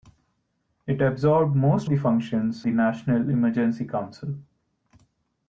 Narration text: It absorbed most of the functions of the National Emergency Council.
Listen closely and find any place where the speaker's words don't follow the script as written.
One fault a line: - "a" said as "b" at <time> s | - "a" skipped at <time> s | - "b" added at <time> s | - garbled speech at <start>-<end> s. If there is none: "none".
- "of" skipped at 1.9 s
- "of" skipped at 2.7 s